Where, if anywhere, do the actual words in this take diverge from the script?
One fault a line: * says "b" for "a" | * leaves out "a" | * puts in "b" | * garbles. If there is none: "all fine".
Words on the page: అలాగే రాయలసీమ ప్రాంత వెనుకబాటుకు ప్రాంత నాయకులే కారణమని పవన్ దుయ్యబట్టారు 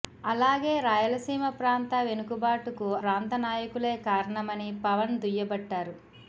all fine